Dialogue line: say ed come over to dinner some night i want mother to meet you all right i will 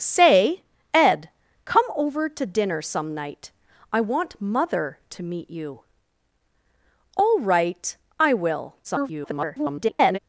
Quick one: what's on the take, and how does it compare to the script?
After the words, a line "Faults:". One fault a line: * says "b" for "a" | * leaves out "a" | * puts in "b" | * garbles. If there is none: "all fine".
say ed come over to dinner some night i want mother to meet you all right i will [garbled]
Faults:
* garbles